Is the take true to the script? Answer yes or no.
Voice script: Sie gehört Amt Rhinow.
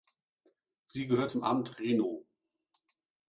no